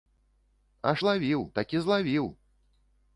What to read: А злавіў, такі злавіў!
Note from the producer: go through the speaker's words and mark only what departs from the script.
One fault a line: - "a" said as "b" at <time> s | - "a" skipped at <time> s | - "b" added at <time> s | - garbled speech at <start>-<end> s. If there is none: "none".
none